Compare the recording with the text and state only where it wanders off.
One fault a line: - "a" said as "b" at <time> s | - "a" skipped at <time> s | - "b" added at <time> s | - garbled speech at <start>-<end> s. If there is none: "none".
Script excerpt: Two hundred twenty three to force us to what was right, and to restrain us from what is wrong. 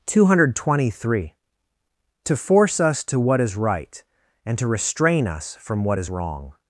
- "was" said as "is" at 3.4 s